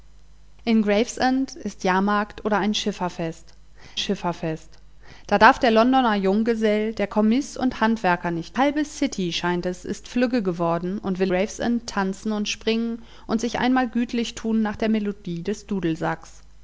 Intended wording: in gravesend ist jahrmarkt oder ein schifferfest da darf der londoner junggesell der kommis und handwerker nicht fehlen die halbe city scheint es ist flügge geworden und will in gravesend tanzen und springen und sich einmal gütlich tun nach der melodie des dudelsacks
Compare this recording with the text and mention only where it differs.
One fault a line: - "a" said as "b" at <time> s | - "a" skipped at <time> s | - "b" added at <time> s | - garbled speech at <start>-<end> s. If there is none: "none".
- "schifferfest" added at 4.0 s
- "fehlen die" skipped at 8.6 s
- "in" skipped at 11.3 s